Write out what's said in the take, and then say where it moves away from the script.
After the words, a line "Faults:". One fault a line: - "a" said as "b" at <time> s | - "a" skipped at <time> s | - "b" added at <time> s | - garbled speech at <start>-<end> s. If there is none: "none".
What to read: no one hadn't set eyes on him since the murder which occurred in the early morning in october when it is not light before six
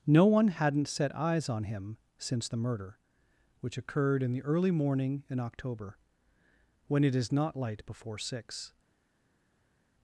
no one hadn't set eyes on him since the murder which occurred in the early morning in october when it is not light before six
Faults:
none